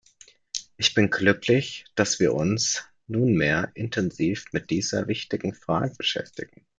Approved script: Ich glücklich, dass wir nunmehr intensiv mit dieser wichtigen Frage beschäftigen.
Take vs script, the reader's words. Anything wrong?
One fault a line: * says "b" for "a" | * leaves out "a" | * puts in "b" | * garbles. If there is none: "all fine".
* puts in "bin"
* puts in "uns"